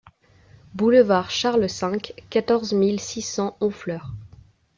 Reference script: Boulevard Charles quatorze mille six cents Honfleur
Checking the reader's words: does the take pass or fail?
fail